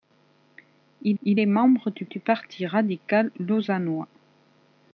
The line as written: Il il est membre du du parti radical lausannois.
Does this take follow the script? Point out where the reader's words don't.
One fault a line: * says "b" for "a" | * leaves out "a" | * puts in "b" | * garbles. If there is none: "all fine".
all fine